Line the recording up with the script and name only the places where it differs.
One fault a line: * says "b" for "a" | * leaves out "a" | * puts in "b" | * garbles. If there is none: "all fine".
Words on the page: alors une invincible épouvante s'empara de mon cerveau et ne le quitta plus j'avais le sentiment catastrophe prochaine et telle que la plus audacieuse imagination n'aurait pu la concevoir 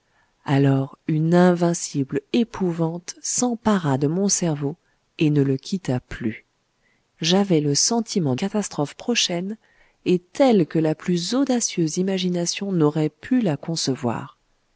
all fine